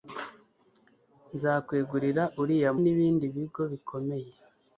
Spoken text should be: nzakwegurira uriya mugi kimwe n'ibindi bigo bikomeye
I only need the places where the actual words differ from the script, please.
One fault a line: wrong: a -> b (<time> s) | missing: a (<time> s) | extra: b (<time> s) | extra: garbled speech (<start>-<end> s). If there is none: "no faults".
missing: mugi kimwe (2.7 s)